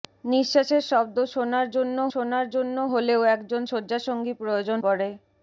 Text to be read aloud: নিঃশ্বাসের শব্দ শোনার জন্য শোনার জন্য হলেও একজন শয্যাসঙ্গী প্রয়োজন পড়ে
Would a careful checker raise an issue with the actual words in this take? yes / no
no